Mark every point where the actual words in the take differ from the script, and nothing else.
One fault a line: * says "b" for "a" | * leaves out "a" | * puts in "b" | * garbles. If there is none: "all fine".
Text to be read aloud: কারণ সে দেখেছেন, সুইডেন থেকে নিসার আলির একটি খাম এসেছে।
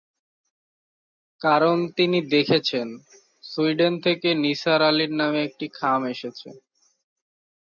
* says "তিনি" for "সে"
* puts in "নামে"